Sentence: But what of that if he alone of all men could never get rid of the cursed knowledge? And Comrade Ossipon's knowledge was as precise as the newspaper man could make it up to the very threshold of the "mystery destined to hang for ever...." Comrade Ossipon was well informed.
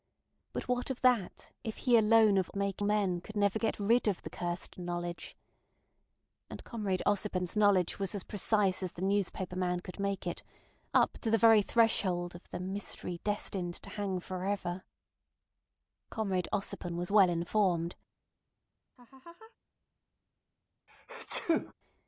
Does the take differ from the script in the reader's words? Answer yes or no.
yes